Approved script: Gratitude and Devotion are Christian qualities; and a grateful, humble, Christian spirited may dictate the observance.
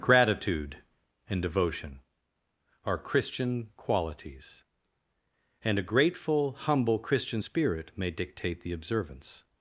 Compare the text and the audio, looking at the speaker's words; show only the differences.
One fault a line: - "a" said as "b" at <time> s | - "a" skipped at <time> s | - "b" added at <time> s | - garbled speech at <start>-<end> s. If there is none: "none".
- "spirited" said as "spirit" at 7.4 s